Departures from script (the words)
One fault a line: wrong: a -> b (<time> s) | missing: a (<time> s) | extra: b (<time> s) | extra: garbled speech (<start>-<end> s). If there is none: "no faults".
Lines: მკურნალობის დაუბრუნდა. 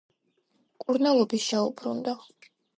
no faults